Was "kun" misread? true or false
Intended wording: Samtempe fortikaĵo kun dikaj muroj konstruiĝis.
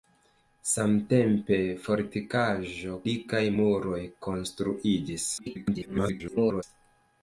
true